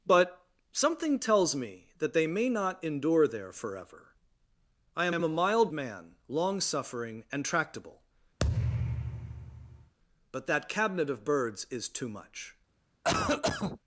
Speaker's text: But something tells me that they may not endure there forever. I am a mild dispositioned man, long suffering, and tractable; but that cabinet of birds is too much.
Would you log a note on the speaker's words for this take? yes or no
yes